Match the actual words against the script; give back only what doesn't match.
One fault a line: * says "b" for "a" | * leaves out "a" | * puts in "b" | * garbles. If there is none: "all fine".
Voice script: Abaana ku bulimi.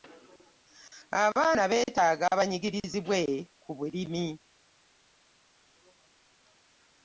* puts in "beetaaga banyigirizibwe"